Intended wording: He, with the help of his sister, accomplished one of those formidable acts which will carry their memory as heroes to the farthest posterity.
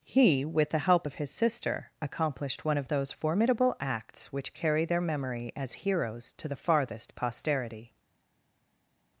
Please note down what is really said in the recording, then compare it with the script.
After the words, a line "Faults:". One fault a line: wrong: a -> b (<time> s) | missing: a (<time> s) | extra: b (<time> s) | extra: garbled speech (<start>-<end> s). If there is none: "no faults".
He, with the help of his sister, accomplished one of those formidable acts which carry their memory as heroes to the farthest posterity.
Faults:
missing: will (4.5 s)